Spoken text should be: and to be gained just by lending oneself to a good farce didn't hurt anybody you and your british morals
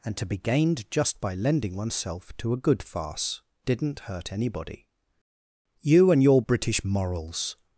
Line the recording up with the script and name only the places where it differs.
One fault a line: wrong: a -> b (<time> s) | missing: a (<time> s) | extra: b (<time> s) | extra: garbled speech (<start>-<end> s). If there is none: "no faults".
no faults